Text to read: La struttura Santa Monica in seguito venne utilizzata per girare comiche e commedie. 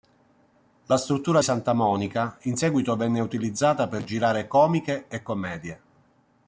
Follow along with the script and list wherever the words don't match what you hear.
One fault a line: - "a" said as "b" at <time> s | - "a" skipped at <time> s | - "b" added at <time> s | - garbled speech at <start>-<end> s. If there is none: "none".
none